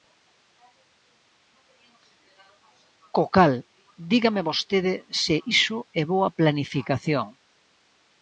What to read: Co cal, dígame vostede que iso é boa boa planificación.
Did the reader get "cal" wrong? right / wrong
right